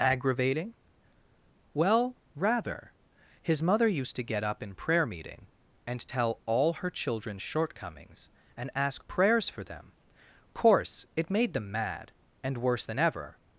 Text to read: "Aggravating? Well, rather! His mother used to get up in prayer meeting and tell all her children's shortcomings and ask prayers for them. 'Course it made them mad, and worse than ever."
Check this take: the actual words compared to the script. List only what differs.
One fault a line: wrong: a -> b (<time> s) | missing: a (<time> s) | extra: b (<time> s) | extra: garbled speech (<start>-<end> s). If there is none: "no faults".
no faults